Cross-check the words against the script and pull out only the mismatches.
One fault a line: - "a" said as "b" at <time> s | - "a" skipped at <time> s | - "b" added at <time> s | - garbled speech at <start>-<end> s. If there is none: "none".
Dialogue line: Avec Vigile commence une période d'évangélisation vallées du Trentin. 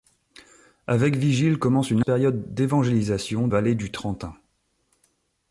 none